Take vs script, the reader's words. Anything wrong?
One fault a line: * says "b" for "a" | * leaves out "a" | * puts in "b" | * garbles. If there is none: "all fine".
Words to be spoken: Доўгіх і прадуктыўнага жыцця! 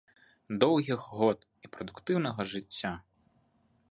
* puts in "год"